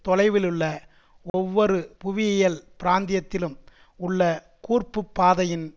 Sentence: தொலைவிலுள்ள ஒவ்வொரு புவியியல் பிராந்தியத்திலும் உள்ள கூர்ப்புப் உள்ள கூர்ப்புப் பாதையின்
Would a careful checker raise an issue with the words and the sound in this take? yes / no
yes